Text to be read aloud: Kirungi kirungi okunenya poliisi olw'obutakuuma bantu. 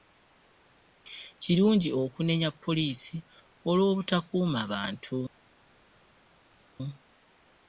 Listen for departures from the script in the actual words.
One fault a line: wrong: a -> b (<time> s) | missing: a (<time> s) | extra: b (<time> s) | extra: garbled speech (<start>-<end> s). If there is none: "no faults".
missing: kirungi (1.9 s)